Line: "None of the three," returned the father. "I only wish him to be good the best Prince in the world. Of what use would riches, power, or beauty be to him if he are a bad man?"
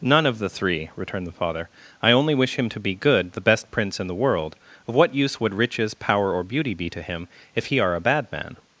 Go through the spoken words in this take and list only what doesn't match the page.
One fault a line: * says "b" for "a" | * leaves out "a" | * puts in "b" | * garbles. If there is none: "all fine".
all fine